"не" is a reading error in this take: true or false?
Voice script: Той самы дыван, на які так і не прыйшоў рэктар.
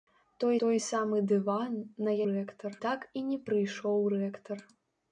false